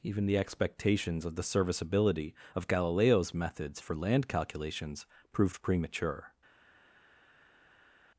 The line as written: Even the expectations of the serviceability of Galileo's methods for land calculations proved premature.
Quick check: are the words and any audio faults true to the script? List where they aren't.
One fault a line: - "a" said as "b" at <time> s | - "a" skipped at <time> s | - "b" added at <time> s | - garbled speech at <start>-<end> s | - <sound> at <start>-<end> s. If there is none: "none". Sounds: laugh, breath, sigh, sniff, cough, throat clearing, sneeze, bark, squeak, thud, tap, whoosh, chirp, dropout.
none